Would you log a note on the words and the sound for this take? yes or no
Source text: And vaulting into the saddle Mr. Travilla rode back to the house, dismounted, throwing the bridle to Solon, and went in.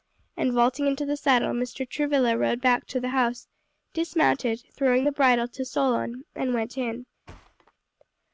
yes